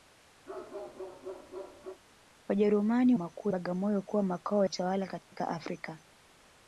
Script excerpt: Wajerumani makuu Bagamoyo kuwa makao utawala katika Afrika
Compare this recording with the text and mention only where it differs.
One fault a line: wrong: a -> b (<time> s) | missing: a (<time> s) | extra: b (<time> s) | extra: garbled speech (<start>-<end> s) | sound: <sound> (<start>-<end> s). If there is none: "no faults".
sound: bark (0.5-2.0 s)
sound: dropout (5.2-5.3 s)